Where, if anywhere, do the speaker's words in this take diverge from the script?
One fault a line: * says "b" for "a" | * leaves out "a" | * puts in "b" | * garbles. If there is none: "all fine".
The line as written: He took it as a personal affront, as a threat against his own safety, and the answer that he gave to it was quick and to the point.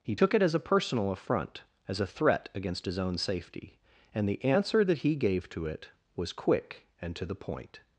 all fine